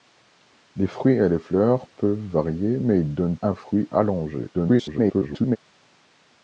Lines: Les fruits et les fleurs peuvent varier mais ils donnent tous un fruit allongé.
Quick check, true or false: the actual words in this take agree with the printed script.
false